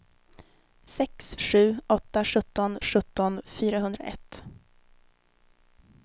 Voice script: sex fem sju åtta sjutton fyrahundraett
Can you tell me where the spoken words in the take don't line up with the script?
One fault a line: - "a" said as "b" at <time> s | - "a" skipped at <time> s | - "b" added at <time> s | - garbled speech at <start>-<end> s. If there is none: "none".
- "fem" skipped at 1.4 s
- "sjutton" added at 2.8 s